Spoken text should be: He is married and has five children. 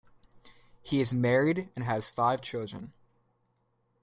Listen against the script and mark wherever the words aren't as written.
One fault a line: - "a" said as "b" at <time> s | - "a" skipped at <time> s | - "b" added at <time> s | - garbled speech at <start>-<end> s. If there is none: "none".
none